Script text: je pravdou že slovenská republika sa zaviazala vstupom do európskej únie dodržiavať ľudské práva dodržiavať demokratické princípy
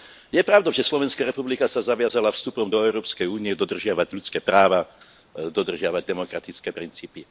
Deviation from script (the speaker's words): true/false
false